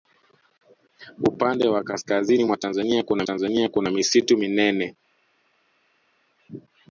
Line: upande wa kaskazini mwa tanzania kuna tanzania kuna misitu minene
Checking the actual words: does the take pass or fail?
pass